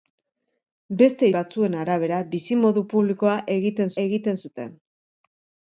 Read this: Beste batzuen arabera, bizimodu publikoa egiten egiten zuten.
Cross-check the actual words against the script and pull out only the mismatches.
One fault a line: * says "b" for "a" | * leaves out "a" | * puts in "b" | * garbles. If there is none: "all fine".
all fine